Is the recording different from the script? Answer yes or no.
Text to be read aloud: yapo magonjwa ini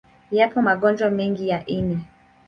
yes